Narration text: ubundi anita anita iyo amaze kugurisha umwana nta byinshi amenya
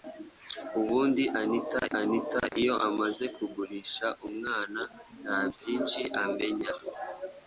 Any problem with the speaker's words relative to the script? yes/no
no